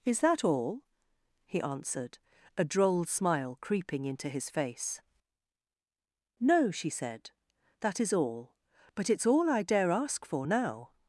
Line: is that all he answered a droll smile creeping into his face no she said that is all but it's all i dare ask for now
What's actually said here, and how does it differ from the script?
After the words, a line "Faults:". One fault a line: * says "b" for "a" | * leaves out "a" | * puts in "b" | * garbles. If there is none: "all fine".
is that all he answered a droll smile creeping into his face no she said that is all but it's all i dare ask for now
Faults:
all fine